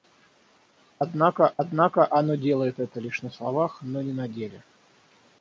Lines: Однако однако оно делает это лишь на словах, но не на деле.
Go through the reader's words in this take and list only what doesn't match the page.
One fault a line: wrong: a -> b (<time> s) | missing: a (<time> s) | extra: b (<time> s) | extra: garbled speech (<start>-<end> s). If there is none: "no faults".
no faults